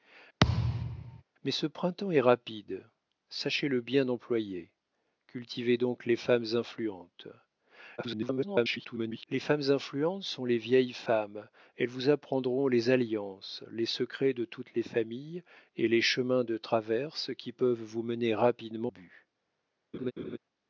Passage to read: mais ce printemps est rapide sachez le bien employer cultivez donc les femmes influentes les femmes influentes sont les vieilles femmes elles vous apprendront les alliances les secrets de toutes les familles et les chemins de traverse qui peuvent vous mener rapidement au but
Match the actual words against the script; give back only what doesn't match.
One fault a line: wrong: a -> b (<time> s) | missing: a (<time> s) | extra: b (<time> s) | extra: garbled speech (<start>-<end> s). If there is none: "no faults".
extra: garbled speech (8.0-9.3 s)
missing: au (18.9 s)